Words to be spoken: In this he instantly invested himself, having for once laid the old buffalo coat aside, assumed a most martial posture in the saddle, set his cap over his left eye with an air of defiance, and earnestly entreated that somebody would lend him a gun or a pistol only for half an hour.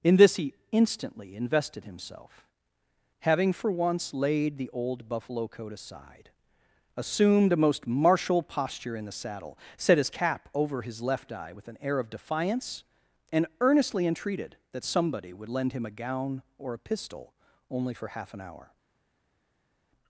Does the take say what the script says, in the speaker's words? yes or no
no